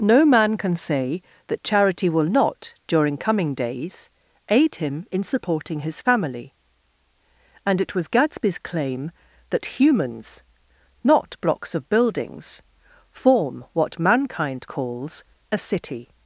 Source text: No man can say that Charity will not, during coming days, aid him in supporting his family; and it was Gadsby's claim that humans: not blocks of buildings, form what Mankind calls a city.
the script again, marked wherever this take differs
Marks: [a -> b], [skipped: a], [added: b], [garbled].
No man can say that Charity will not, during coming days, aid him in supporting his family; and it was Gadsby's claim that humans: not blocks of buildings, form what Mankind calls a city.